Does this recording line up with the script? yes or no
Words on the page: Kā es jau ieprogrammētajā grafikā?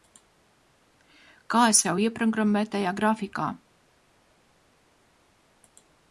yes